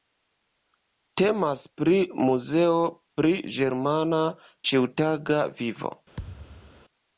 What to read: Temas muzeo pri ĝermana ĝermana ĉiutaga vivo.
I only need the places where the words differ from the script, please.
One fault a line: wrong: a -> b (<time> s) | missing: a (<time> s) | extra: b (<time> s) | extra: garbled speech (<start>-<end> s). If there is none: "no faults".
extra: pri (1.8 s)
missing: ĝermana (4.2 s)